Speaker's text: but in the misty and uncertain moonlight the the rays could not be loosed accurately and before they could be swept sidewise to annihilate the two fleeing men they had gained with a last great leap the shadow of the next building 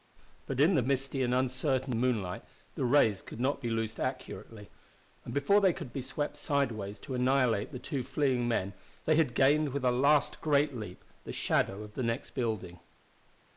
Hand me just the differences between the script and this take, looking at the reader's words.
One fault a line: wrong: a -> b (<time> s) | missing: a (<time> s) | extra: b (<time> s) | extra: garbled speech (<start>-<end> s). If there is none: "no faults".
missing: the (2.9 s)